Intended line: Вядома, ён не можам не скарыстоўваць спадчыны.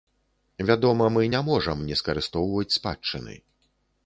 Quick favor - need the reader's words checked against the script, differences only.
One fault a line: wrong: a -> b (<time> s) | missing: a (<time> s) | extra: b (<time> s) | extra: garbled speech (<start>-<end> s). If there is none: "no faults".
wrong: ён -> мы (1.2 s)